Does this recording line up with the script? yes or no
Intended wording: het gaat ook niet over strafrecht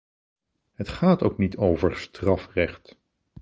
yes